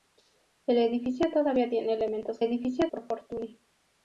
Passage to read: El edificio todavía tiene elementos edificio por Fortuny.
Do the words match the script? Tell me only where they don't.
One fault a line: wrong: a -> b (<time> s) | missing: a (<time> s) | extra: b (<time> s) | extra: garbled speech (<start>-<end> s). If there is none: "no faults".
no faults